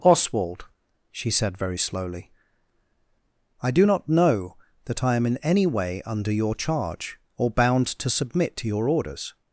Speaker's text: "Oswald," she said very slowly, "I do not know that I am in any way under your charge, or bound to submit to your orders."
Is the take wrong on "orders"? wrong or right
right